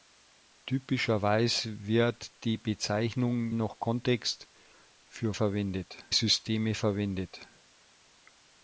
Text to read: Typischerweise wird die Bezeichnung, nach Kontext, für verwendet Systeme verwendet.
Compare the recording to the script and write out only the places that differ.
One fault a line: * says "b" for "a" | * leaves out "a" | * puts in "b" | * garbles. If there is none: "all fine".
all fine